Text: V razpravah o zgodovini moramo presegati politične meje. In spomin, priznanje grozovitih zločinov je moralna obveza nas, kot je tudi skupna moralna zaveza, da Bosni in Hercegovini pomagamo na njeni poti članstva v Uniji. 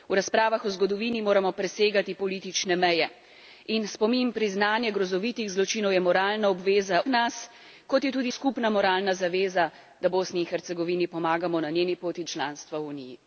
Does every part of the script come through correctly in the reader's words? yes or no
yes